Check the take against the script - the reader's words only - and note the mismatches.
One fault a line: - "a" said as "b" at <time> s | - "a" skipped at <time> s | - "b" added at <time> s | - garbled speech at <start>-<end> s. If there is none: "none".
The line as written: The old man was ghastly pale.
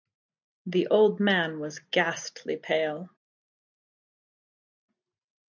none